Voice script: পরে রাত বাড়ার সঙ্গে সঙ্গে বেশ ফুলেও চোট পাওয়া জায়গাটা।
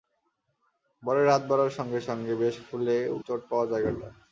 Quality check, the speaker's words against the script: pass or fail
pass